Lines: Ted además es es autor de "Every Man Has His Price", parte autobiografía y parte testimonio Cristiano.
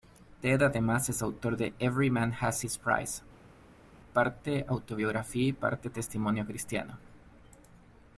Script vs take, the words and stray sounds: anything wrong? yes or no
yes